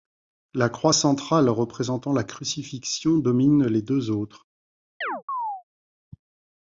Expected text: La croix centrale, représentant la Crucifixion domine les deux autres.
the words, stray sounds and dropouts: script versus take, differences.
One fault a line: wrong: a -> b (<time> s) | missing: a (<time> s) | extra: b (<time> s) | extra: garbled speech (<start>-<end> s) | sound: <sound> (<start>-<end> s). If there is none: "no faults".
sound: chirp (5.0-5.6 s)